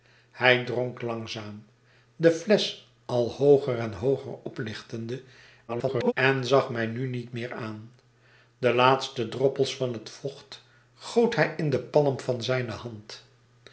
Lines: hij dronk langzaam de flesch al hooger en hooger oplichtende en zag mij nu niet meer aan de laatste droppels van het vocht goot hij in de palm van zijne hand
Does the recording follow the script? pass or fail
fail